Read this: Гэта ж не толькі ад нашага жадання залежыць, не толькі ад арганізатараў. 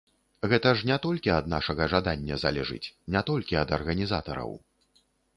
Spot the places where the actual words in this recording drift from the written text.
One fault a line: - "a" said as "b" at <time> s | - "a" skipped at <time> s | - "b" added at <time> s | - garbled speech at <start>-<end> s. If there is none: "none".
none